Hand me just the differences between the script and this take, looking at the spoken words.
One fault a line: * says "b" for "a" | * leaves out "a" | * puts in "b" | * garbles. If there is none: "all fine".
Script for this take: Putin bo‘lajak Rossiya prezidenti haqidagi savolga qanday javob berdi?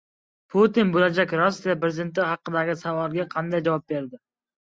all fine